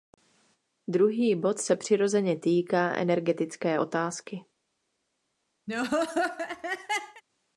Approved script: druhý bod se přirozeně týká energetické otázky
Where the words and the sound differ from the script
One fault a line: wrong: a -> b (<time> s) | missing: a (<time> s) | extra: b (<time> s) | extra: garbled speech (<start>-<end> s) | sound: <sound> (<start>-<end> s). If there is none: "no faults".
sound: laugh (5.7-7.2 s)